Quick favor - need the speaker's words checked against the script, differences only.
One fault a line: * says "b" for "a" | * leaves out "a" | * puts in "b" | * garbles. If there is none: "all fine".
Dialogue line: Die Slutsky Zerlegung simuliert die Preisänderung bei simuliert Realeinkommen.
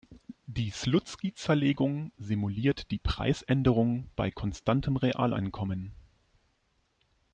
* says "konstantem" for "simuliert"